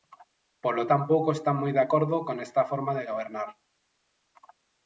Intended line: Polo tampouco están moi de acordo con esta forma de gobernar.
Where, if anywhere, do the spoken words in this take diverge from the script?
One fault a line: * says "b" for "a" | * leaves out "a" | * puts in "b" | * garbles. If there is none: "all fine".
all fine